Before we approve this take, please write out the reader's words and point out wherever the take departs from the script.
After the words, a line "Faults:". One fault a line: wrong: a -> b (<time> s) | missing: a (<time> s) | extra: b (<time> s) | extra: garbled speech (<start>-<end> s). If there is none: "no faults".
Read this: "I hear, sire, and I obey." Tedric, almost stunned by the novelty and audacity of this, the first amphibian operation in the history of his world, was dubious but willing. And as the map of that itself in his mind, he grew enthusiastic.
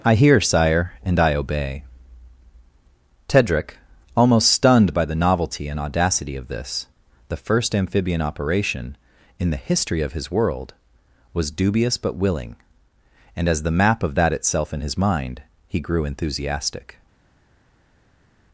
"I hear, sire, and I obey." Tedric, almost stunned by the novelty and audacity of this, the first amphibian operation in the history of his world, was dubious but willing. And as the map of that itself in his mind, he grew enthusiastic.
Faults:
no faults